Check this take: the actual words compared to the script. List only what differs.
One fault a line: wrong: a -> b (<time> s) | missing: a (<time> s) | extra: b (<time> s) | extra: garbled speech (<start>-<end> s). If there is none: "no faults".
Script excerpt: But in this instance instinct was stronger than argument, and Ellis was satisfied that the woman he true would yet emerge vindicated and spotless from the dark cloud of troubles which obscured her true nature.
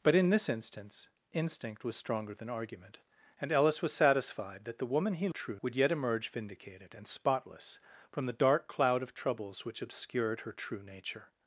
no faults